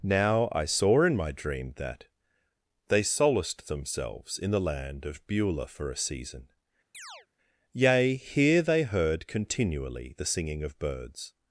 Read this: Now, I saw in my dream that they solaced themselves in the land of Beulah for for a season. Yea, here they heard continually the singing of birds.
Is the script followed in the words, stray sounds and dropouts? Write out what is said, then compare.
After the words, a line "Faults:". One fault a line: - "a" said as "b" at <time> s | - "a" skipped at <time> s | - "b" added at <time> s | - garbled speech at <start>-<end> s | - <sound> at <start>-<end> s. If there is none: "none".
Now, I saw in my dream that they solaced themselves in the land of Beulah for a season. Yea, here they heard continually the singing of birds.
Faults:
- "for" skipped at 5.9 s
- chirp at 6.9-7.3 s